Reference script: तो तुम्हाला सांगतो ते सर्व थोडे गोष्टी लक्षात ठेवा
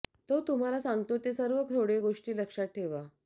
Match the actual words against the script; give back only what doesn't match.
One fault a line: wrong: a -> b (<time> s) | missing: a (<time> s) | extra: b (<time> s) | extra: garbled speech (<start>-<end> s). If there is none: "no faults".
no faults